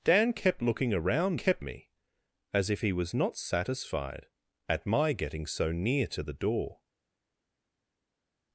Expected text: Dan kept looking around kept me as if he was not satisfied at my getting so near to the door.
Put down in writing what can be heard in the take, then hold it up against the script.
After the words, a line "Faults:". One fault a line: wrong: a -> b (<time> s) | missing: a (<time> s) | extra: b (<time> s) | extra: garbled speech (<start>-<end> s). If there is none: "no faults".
Dan kept looking around kept me as if he was not satisfied at my getting so near to the door.
Faults:
no faults